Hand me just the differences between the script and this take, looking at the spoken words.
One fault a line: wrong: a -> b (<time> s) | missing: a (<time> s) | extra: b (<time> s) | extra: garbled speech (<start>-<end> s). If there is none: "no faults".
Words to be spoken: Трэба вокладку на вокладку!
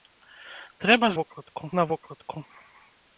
no faults